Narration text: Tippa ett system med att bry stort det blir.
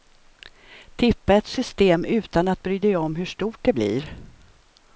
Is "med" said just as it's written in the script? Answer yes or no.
no